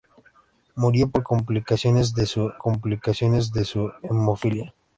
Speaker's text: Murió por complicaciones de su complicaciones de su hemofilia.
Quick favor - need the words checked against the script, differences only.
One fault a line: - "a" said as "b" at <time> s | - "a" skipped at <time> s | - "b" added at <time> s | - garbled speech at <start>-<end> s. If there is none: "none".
none